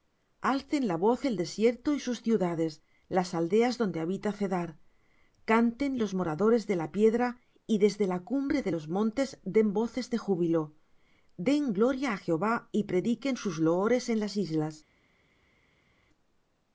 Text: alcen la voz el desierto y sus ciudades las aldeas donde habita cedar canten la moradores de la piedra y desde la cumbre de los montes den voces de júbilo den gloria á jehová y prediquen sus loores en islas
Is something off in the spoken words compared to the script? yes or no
yes